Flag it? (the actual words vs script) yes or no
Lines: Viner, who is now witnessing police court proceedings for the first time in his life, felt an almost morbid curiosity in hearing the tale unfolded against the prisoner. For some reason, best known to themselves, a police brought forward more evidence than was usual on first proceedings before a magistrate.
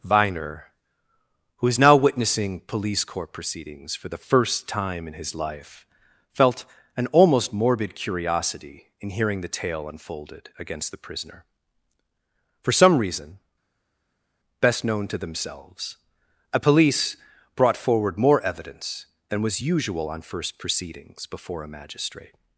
no